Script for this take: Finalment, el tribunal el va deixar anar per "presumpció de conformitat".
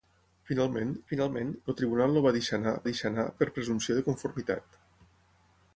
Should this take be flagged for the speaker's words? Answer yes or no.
yes